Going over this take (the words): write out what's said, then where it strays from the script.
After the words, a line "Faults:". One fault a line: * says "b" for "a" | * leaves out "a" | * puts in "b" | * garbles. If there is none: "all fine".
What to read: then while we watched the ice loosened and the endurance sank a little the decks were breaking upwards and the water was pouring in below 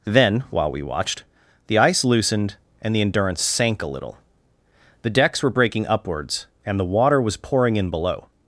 then while we watched the ice loosened and the endurance sank a little the decks were breaking upwards and the water was pouring in below
Faults:
all fine